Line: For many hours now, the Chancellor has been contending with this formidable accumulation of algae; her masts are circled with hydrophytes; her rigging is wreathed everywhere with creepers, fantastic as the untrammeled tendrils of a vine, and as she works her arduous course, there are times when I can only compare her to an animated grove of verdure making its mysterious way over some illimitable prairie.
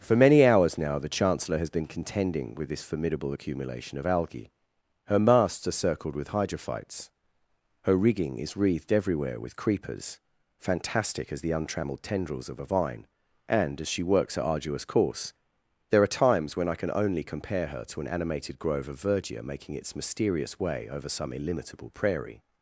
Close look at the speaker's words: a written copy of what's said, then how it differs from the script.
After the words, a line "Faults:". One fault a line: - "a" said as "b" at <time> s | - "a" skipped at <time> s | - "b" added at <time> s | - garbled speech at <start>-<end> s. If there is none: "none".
For many hours now, the Chancellor has been contending with this formidable accumulation of algae; her masts are circled with hydrophytes; her rigging is wreathed everywhere with creepers, fantastic as the untrammeled tendrils of a vine, and as she works her arduous course, there are times when I can only compare her to an animated grove of verdure making its mysterious way over some illimitable prairie.
Faults:
none